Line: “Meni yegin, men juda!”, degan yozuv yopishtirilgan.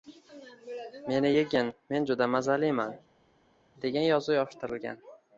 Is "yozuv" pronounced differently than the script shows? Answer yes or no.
no